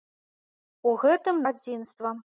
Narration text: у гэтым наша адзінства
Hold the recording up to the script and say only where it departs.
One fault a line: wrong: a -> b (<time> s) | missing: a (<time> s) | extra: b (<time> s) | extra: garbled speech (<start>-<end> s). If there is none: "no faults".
missing: наша (1.4 s)